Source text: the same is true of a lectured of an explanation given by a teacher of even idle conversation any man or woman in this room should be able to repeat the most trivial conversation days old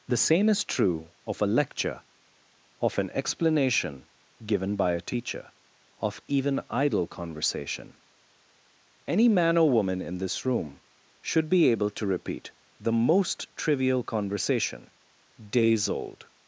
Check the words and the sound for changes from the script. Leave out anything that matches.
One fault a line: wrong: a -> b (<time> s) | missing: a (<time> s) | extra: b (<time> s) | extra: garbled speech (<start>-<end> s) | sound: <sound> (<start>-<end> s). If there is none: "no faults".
wrong: lectured -> lecture (1.5 s)